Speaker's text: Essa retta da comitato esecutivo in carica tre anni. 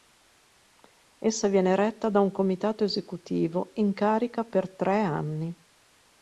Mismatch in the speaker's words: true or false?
true